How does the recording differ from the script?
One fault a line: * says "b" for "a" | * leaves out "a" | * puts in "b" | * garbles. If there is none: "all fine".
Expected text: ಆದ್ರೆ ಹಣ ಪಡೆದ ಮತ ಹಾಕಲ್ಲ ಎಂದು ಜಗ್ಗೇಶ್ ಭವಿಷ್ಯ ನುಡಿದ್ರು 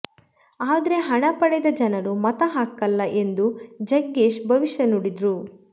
* puts in "ಜನರು"